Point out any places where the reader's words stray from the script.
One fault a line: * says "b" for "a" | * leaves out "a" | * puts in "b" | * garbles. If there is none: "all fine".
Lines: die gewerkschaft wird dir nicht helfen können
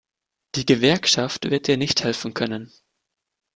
all fine